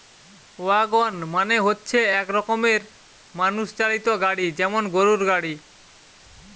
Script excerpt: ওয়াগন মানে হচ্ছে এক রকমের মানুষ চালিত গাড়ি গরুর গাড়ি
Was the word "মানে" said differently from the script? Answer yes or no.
no